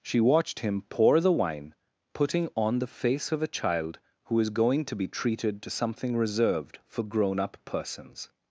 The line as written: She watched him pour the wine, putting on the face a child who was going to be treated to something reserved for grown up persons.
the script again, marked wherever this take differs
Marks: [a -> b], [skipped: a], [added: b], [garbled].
She watched him pour the wine, putting on the face [added: of] a child who [was -> is] going to be treated to something reserved for grown up persons.